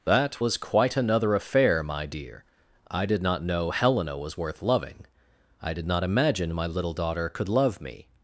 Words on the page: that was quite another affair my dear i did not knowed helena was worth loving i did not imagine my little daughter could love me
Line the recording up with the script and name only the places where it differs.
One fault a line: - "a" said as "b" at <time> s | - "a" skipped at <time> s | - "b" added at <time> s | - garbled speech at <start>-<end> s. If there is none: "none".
- "knowed" said as "know" at 3.4 s